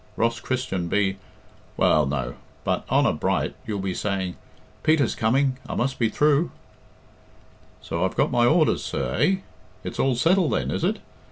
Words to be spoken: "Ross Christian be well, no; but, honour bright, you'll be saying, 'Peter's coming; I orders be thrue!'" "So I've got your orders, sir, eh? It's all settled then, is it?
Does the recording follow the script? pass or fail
fail